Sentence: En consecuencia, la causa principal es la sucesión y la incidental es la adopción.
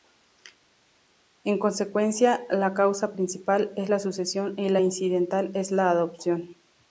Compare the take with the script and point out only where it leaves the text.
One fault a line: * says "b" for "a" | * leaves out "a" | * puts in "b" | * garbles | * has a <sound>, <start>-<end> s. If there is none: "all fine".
all fine